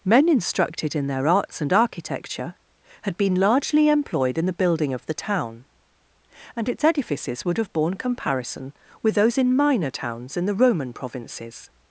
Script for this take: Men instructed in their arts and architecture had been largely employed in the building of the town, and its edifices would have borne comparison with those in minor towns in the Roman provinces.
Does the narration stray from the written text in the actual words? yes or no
no